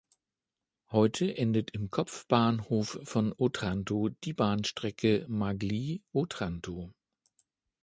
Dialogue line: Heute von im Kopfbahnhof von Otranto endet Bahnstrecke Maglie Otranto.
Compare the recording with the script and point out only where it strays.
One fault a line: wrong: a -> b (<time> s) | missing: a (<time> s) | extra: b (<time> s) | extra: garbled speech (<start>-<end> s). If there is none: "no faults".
wrong: von -> endet (1.4 s)
wrong: endet -> die (4.1 s)